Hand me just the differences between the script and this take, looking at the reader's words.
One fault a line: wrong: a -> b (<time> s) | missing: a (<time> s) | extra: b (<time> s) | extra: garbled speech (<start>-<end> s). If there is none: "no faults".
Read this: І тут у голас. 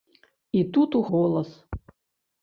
no faults